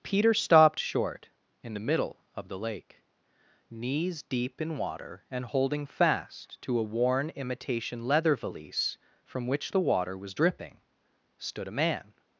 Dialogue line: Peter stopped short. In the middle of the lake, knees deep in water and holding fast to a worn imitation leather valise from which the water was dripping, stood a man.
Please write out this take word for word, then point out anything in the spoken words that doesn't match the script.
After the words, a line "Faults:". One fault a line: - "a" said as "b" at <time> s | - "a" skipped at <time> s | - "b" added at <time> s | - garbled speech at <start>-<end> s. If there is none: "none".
Peter stopped short. In the middle of the lake, knees deep in water and holding fast to a worn imitation leather valise from which the water was dripping, stood a man.
Faults:
none